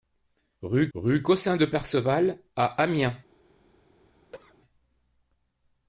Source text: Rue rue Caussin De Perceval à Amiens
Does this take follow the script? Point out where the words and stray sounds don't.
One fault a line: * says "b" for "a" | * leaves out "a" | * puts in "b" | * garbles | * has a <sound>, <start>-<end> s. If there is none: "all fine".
* has a cough, 4.3-4.6 s